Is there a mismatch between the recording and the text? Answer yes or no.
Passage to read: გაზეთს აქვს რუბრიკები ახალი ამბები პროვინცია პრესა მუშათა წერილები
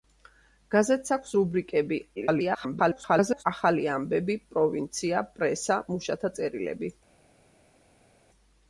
yes